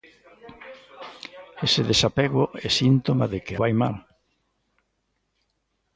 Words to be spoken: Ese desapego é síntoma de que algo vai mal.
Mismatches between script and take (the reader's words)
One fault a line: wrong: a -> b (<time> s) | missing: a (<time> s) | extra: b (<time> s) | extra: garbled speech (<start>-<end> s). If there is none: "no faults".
missing: algo (3.5 s)